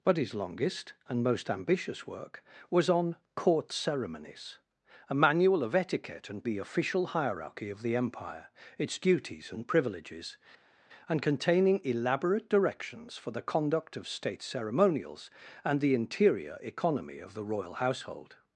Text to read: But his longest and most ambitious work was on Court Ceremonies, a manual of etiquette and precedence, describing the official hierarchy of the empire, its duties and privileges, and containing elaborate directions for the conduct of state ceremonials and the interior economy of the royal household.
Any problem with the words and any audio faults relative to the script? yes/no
yes